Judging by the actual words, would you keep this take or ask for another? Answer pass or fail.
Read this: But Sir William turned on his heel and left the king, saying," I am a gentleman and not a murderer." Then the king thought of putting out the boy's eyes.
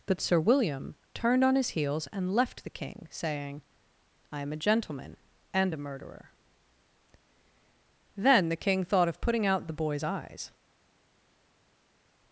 fail